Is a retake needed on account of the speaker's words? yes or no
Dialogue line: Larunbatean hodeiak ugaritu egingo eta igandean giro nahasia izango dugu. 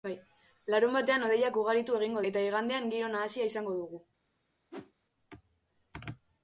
no